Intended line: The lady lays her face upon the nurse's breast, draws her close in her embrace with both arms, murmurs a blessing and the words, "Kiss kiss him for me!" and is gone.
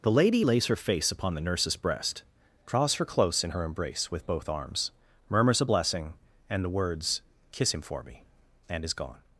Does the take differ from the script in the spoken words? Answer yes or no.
yes